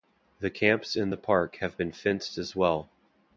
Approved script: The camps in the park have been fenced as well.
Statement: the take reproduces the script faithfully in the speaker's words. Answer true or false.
true